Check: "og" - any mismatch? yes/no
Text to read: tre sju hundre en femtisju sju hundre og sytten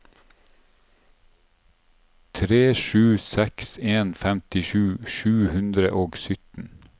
no